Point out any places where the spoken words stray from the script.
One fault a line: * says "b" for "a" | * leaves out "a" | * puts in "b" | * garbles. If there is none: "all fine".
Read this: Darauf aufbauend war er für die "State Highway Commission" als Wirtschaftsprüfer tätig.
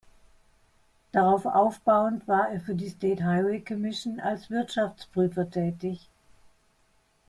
all fine